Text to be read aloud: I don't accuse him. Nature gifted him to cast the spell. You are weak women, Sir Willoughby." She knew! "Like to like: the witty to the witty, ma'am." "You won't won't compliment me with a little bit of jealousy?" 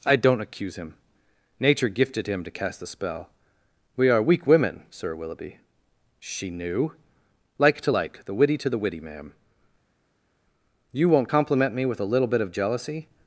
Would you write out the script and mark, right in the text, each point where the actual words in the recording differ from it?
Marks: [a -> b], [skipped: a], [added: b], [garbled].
I don't accuse him. Nature gifted him to cast the spell. [You -> We] are weak women, Sir Willoughby." She knew! "Like to like: the witty to the witty, ma'am." "You won't [skipped: won't] compliment me with a little bit of jealousy?"